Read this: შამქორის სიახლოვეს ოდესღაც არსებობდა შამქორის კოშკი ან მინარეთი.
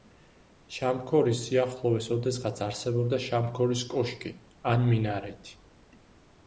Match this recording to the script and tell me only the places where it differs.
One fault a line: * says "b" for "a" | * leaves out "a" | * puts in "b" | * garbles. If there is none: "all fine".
all fine